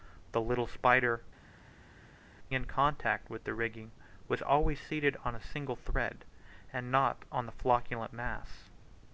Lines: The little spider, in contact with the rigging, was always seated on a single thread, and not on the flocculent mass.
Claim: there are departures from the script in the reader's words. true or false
false